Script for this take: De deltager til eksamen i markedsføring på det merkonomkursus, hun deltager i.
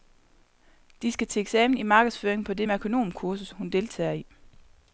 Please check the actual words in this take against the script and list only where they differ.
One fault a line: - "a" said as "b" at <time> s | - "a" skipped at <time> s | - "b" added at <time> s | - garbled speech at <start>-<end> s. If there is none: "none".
- "deltager" said as "skal" at 1.1 s